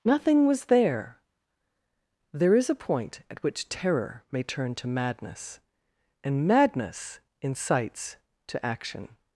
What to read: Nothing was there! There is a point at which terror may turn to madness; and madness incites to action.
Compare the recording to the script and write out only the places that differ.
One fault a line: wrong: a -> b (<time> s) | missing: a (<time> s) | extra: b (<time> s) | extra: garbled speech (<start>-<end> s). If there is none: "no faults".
no faults